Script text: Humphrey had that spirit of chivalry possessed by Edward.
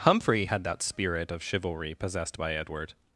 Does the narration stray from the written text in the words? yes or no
no